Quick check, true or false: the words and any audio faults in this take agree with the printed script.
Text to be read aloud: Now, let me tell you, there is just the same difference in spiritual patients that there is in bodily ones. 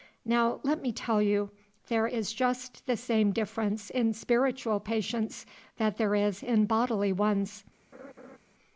false